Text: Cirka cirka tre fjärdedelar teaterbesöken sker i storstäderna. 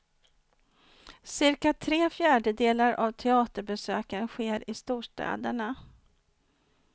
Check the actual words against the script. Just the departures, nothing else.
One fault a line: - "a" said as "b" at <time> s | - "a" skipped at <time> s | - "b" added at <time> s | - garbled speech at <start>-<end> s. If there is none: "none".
- "cirka" skipped at 1.7 s
- "av" added at 2.9 s